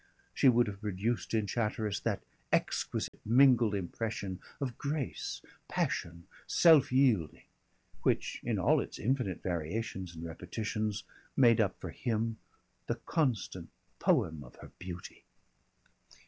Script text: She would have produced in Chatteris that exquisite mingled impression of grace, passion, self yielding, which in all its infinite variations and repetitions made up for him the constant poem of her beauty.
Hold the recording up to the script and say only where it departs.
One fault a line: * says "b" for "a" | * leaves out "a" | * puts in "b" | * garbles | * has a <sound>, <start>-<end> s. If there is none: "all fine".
* has a dropout, 3.1-3.1 s